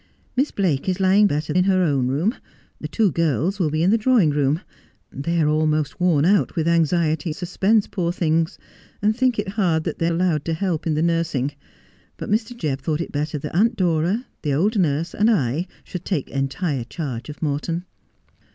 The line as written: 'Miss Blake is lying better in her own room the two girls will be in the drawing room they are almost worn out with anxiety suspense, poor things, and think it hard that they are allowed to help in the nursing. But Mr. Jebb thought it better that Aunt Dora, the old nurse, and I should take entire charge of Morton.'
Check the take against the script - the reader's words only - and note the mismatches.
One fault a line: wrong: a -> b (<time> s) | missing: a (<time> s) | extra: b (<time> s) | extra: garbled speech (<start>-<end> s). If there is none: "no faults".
no faults